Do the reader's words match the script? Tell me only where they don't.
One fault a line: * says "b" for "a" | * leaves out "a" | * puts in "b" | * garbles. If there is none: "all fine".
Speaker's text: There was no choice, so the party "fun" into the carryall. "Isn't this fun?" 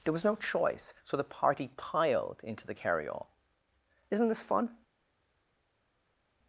* says "piled" for "fun"